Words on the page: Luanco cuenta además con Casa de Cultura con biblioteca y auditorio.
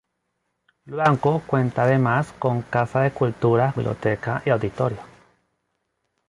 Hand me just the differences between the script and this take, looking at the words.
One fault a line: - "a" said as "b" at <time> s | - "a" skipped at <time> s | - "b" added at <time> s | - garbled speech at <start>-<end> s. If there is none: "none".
- "con" skipped at 3.8 s